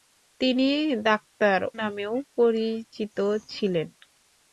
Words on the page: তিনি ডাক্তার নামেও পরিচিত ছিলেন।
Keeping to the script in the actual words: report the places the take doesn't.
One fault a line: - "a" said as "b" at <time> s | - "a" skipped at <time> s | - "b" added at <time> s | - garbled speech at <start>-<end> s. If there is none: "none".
none